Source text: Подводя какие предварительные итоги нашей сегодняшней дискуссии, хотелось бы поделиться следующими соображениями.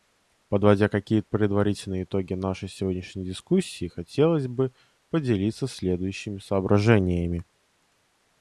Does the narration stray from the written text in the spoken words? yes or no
no